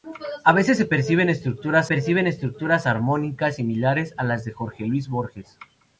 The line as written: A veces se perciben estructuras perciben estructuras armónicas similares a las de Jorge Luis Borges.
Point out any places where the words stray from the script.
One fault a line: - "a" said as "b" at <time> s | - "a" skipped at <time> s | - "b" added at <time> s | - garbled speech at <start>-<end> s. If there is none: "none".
none